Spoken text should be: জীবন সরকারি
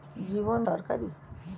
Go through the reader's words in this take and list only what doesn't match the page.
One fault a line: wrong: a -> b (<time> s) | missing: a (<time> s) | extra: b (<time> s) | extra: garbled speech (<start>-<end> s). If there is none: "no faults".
no faults